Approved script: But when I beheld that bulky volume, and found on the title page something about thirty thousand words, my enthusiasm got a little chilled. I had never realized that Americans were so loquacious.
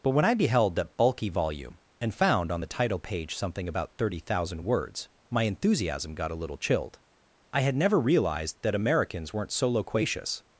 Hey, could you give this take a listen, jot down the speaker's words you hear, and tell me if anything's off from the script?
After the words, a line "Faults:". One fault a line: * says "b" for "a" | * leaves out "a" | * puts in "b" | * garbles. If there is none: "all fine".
But when I beheld that bulky volume, and found on the title page something about thirty thousand words, my enthusiasm got a little chilled. I had never realized that Americans weren't so loquacious.
Faults:
* says "weren't" for "were"